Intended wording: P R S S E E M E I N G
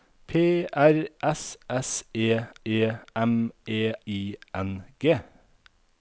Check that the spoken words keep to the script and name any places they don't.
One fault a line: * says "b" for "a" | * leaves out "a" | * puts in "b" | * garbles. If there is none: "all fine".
all fine